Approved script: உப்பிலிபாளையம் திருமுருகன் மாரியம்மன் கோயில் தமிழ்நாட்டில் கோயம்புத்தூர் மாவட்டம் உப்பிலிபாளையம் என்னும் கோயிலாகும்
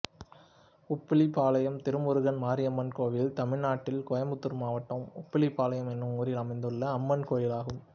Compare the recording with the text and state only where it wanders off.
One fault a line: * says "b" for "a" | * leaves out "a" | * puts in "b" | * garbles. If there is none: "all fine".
* puts in "ஊரில் அமைந்துள்ள அம்மன்"